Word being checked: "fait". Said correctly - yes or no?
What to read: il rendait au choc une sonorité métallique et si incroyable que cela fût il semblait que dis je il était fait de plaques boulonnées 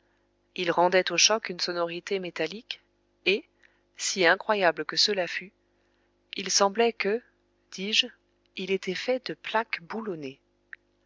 yes